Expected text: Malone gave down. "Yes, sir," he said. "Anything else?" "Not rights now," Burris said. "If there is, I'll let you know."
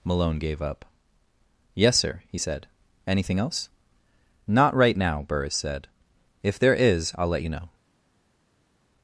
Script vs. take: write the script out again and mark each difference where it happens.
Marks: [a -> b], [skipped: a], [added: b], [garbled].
Malone gave [down. -> up] "Yes, sir," he said. "Anything else?" "Not [rights -> right] now," Burris said. "If there is, I'll let you know."